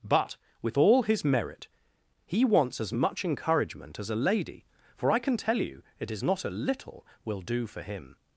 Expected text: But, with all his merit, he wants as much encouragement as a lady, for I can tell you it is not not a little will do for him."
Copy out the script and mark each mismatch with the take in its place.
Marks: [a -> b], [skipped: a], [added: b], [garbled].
But, with all his merit, he wants as much encouragement as a lady, for I can tell you it is not [skipped: not] a little will do for him."